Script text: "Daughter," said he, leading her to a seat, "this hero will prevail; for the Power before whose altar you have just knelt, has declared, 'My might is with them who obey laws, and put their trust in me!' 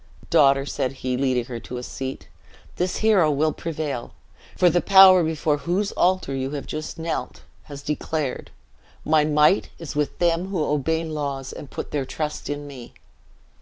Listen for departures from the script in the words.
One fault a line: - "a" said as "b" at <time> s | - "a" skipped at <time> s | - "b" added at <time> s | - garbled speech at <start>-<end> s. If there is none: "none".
none